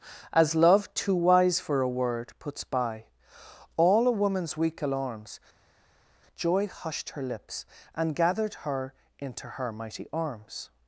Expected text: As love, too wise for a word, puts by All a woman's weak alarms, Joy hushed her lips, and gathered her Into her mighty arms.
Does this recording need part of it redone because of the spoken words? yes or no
no